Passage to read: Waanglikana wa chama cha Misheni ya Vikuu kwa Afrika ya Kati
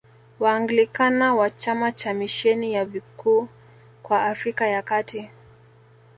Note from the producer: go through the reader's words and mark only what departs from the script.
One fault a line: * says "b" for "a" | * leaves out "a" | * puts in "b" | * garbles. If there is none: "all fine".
all fine